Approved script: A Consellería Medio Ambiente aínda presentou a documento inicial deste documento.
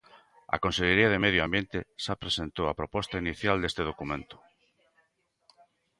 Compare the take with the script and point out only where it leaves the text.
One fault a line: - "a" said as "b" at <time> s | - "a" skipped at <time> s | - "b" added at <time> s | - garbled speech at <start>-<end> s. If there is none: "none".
- "de" added at 1.1 s
- "aínda" said as "xa" at 2.0 s
- "documento" said as "proposta" at 2.8 s